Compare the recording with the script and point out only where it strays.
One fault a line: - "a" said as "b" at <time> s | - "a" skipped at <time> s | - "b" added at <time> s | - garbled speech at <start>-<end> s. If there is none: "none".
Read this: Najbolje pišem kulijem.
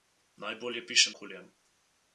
none